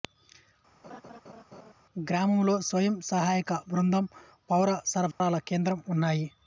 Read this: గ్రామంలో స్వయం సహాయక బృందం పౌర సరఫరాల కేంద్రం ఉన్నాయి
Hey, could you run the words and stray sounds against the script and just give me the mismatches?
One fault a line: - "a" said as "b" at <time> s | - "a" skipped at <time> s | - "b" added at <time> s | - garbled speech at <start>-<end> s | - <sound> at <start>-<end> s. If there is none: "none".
- laugh at 0.8-1.7 s
- dropout at 5.1-5.2 s